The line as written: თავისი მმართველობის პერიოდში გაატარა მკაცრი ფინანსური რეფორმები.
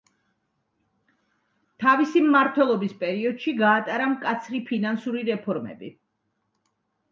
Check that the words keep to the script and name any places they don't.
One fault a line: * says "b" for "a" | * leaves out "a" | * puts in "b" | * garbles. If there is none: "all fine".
all fine